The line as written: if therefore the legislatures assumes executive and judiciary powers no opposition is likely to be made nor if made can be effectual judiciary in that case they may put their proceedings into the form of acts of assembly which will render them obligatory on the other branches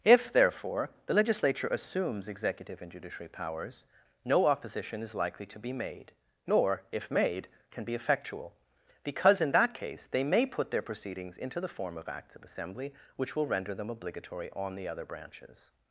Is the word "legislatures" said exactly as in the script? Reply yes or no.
no